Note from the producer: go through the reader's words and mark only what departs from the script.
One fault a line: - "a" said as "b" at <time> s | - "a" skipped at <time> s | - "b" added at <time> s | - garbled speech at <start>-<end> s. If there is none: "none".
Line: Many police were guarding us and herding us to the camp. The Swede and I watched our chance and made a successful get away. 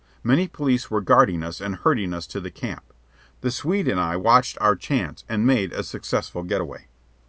none